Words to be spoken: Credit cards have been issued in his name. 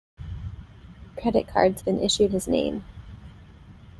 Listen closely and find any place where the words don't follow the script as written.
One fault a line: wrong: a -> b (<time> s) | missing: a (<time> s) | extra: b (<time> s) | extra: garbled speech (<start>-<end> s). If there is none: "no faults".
missing: have (1.8 s)
missing: in (2.3 s)